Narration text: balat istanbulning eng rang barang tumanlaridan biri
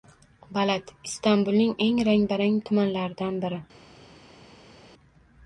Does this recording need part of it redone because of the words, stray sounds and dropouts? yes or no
no